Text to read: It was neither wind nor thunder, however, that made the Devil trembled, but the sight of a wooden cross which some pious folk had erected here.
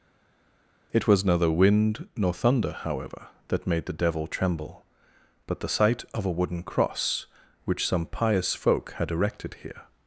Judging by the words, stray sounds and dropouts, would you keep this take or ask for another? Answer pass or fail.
fail